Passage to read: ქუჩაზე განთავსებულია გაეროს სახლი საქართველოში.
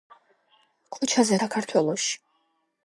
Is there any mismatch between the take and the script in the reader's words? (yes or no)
yes